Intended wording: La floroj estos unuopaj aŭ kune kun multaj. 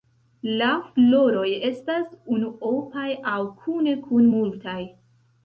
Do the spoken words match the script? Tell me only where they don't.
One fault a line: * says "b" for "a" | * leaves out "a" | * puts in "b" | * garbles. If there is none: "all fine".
* says "estas" for "estos"